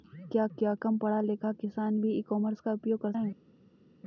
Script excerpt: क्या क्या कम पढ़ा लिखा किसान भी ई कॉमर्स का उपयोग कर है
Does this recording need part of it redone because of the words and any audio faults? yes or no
no